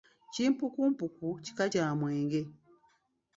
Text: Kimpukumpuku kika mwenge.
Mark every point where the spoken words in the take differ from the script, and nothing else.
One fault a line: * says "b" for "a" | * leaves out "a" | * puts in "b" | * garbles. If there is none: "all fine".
* puts in "kya"